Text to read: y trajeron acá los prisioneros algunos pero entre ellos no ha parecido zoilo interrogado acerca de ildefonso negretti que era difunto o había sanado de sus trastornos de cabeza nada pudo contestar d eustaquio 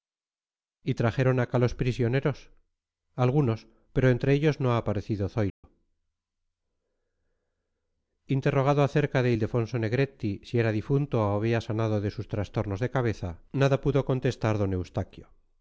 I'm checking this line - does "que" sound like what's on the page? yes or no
no